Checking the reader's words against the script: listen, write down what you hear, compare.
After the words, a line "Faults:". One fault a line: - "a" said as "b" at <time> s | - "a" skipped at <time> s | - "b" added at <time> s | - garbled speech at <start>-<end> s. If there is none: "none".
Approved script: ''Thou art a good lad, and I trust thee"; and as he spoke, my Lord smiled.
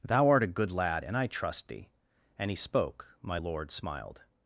''Thou art a good lad, and I trust thee"; and he spoke, my Lord smiled.
Faults:
- "as" skipped at 2.5 s